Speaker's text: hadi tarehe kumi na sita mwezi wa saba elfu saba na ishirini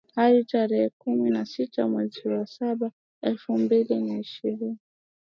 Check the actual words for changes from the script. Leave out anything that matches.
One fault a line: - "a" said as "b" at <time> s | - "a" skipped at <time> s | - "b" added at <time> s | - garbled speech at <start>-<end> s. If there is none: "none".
- "saba" said as "mbili" at 3.6 s